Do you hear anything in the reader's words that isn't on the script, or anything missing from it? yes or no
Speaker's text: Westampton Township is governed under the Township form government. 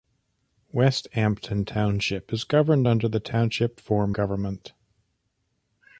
no